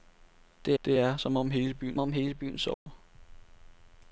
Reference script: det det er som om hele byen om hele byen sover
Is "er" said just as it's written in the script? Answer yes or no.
yes